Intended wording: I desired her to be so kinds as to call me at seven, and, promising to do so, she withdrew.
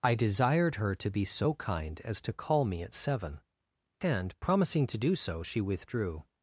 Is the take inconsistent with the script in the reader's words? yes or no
yes